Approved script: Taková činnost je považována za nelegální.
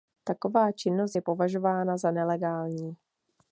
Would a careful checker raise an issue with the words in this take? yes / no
no